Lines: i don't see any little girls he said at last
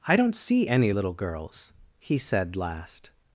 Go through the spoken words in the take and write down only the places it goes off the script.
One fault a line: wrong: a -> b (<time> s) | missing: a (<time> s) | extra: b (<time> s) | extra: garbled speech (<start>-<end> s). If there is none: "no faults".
missing: at (2.6 s)